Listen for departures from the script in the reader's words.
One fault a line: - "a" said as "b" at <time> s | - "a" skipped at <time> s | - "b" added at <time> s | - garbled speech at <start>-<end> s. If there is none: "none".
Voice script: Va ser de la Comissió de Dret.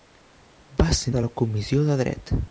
none